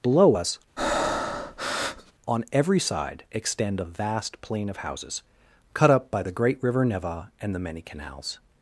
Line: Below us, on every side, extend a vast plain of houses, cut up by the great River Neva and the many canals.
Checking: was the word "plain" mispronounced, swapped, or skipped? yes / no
no